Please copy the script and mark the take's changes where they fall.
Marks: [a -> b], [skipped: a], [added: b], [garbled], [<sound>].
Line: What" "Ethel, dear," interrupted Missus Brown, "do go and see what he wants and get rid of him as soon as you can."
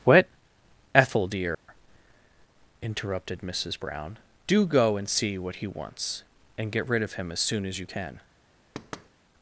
What" "Ethel, dear," [dropout] interrupted Missus Brown, "do go and see what he wants and get rid of him as soon as you can." [thud]